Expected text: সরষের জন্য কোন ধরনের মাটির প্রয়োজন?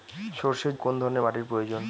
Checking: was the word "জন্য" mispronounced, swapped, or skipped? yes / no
yes